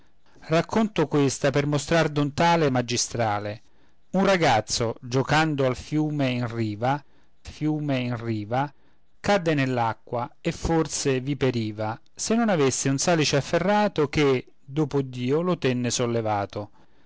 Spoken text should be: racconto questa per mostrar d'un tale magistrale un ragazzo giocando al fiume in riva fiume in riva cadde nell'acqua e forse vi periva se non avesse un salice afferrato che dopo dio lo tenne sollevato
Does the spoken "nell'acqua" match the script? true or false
true